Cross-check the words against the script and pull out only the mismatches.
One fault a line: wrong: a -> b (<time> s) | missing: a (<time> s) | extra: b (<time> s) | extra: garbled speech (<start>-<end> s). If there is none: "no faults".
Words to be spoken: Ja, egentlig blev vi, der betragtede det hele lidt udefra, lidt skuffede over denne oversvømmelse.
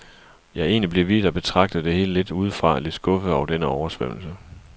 no faults